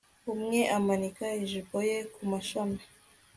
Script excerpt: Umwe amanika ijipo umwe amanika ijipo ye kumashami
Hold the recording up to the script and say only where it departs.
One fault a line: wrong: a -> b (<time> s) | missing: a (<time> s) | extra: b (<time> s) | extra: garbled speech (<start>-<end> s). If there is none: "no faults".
missing: umwe amanika ijipo (1.8 s)